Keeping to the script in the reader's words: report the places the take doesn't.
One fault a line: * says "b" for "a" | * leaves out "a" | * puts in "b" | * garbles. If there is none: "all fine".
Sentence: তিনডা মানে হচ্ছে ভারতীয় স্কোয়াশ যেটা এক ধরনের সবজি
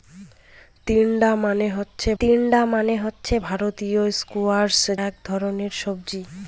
* puts in "তিনডা মানে হচ্ছে"
* leaves out "যেটা"